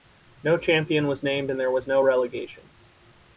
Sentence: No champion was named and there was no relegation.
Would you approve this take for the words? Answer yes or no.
yes